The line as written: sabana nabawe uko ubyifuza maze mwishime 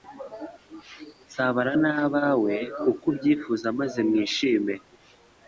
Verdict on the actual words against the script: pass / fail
pass